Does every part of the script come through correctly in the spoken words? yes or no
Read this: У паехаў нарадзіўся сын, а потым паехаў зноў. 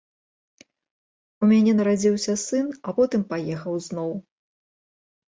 no